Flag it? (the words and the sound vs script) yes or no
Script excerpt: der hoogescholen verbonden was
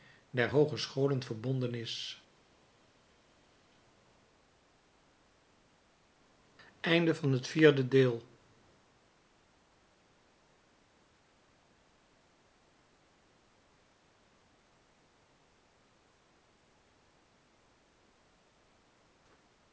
yes